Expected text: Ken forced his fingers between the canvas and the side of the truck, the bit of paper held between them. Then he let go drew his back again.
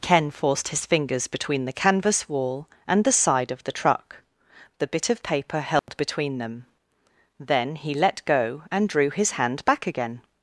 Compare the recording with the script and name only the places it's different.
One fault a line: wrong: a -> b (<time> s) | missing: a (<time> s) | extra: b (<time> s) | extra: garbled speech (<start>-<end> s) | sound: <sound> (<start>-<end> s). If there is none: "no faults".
extra: wall (2.3 s)
sound: dropout (5.8-5.9 s)
extra: and (8.7 s)
extra: hand (9.3 s)